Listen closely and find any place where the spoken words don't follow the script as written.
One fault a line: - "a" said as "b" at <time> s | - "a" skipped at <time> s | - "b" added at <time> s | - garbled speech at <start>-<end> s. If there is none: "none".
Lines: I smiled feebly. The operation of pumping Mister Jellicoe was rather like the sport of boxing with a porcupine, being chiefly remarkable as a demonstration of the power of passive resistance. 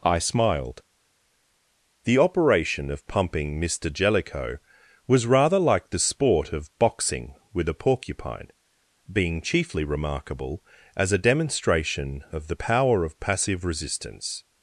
- "feebly" skipped at 0.8 s